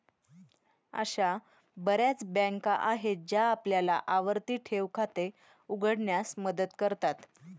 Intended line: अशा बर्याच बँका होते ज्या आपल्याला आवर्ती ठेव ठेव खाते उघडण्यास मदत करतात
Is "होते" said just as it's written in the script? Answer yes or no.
no